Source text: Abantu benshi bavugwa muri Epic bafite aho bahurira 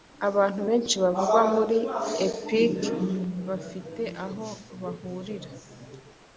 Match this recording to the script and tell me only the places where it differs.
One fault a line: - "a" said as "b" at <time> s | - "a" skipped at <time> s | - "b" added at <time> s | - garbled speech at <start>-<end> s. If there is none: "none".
none